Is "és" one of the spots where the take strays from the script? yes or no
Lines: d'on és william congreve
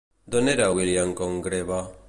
yes